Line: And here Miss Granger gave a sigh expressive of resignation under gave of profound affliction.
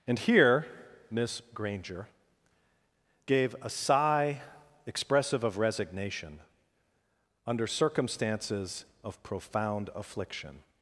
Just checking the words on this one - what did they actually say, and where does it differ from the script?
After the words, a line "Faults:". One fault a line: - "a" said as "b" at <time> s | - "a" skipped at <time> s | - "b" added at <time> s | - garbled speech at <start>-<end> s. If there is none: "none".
And here Miss Granger gave a sigh expressive of resignation under circumstances of profound affliction.
Faults:
- "gave" said as "circumstances" at 7.7 s